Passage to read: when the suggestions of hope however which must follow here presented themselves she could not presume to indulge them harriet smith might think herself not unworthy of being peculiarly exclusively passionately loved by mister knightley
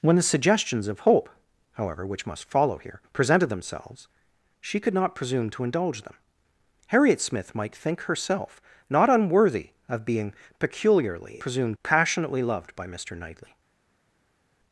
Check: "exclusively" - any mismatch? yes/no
yes